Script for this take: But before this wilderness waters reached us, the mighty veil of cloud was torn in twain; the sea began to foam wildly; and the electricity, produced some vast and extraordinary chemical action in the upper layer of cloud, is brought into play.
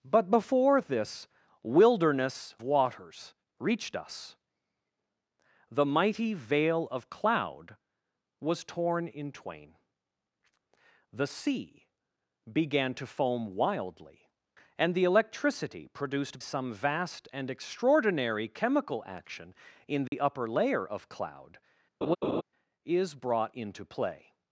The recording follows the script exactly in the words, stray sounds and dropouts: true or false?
false